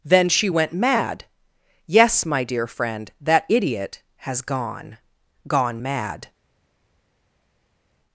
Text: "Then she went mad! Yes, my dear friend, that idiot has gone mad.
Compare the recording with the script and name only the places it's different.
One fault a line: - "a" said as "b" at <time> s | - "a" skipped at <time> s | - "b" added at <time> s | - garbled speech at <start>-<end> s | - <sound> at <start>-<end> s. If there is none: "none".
- "gone" added at 5.5 s